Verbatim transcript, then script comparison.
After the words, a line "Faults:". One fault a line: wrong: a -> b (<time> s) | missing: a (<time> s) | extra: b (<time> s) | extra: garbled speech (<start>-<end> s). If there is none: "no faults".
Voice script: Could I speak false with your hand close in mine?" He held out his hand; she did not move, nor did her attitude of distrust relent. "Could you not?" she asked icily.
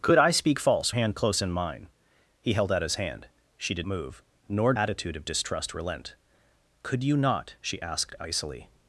Could I speak false hand close in mine?" He held out his hand; she did move, nor attitude of distrust relent. "Could you not?" she asked icily.
Faults:
missing: with your (0.9 s)
missing: not (3.9 s)
missing: did her (4.7 s)